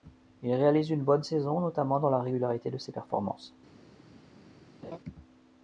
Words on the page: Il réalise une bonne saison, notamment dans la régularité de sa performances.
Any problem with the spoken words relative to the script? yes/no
yes